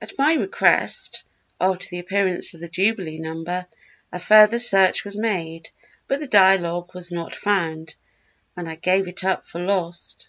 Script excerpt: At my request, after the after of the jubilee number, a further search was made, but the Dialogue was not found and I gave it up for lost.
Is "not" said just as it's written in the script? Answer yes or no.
yes